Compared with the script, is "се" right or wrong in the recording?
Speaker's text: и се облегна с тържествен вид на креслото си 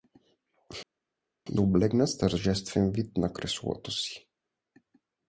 wrong